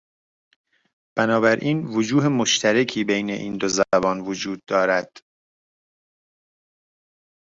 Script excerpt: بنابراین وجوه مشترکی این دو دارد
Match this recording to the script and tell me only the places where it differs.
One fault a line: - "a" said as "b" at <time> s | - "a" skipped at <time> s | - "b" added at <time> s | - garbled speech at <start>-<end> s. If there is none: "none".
- "بین" added at 3.0 s
- "زبان وجود" added at 3.7 s